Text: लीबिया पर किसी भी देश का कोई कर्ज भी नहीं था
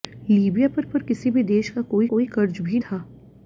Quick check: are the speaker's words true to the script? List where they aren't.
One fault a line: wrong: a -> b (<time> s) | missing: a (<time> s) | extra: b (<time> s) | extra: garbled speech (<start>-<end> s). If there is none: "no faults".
extra: पर (0.8 s)
extra: कोई (2.1 s)
missing: नहीं (2.8 s)